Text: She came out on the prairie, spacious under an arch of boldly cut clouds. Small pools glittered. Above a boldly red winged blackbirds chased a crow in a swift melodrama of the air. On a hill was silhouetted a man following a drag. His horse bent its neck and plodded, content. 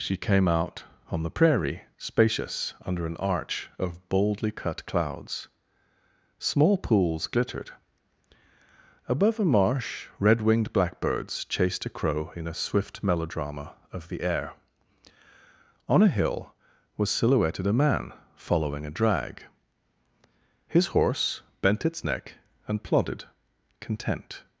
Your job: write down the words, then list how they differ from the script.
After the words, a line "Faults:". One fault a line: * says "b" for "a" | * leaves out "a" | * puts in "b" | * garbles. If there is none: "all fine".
She came out on the prairie, spacious under an arch of boldly cut clouds. Small pools glittered. Above a marsh red winged blackbirds chased a crow in a swift melodrama of the air. On a hill was silhouetted a man following a drag. His horse bent its neck and plodded, content.
Faults:
* says "marsh" for "boldly"